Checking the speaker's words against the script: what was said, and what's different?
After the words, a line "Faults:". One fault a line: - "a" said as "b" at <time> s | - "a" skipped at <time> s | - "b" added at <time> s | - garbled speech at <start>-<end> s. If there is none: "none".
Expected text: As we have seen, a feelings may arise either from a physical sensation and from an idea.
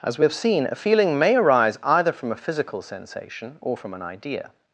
As we have seen, a feeling may arise either from a physical sensation or from an idea.
Faults:
- "feelings" said as "feeling" at 0.8 s
- "and" said as "or" at 3.6 s